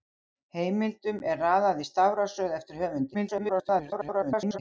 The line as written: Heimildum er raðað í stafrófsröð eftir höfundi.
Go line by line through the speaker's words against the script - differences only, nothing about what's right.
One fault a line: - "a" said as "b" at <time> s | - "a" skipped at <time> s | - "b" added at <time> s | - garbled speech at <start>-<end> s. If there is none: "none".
- garbled speech at 3.1-4.6 s